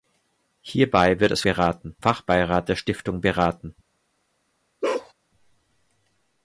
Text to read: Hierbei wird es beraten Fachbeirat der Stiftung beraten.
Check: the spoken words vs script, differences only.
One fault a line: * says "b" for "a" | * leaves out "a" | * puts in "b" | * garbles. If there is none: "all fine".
all fine